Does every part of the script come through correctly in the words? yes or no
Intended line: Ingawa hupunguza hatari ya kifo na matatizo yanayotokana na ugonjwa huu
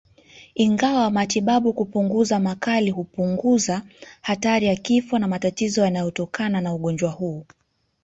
no